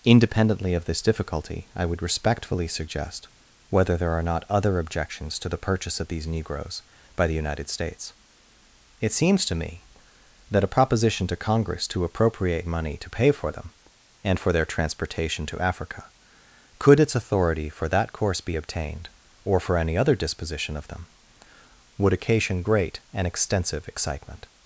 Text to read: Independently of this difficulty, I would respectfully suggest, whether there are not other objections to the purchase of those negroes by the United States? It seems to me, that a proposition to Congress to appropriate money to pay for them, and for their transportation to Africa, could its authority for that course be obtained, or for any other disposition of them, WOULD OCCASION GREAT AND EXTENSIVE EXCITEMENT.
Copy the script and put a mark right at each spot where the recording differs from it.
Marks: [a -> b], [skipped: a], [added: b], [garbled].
Independently of this difficulty, I would respectfully suggest, whether there are not other objections to the purchase of [those -> these] negroes by the United States? It seems to me, that a proposition to Congress to appropriate money to pay for them, and for their transportation to Africa, could its authority for that course be obtained, or for any other disposition of them, WOULD OCCASION GREAT AND EXTENSIVE EXCITEMENT.